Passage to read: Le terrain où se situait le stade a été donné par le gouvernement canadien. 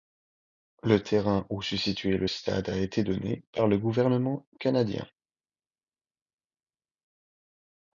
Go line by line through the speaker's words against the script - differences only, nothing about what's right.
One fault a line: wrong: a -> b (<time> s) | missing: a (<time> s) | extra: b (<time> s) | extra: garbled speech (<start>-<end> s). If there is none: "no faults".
no faults